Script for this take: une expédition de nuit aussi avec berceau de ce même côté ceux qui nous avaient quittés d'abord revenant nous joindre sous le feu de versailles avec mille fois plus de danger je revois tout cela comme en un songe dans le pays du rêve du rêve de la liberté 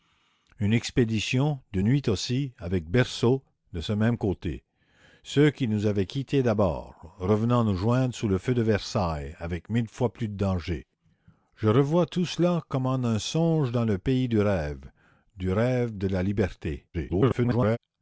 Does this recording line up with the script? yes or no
no